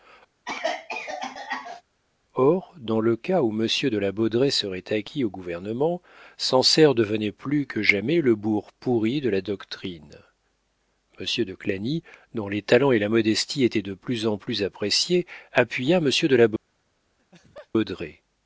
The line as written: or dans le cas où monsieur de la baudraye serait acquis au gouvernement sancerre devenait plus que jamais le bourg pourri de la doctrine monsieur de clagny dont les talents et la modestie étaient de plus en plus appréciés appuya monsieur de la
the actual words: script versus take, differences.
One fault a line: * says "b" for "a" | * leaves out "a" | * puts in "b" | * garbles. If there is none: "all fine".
all fine